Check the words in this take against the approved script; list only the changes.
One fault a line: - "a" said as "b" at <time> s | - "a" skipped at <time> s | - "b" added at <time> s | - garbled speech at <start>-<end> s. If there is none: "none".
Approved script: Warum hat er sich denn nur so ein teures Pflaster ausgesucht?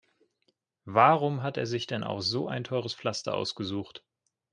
- "nur" said as "auch" at 2.0 s